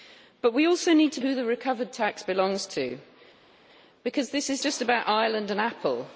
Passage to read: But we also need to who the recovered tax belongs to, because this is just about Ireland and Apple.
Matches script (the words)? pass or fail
pass